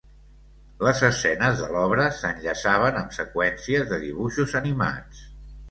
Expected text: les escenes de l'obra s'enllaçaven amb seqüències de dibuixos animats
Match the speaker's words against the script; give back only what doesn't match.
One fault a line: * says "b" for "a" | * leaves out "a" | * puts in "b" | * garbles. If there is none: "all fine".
all fine